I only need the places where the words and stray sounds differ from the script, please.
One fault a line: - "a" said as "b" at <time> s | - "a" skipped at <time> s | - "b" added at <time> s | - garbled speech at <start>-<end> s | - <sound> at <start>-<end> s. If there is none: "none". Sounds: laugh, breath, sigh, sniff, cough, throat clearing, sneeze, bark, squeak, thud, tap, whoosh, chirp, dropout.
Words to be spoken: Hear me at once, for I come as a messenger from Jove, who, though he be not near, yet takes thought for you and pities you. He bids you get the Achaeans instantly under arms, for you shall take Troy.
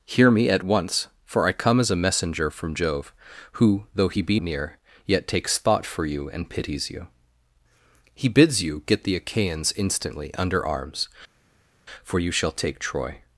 - "not" skipped at 4.4 s